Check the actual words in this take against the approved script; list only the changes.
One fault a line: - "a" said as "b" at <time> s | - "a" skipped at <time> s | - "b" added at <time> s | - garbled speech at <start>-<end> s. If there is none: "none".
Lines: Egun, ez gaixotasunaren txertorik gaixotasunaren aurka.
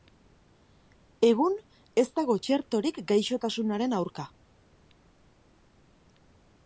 - "gaixotasunaren" said as "dago" at 2.2 s